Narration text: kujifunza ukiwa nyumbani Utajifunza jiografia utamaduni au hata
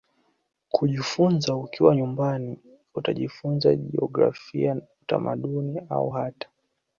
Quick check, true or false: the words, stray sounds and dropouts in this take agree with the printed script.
true